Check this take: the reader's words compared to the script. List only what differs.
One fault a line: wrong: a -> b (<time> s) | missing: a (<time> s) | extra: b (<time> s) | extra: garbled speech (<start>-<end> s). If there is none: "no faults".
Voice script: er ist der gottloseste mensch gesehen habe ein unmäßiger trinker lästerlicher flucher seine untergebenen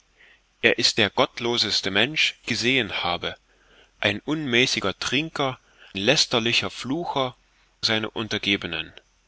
no faults